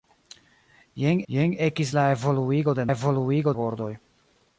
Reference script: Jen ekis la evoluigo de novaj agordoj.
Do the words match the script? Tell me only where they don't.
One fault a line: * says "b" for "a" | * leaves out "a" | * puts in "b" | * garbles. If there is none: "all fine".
* puts in "jen"
* says "evoluigo" for "novaj"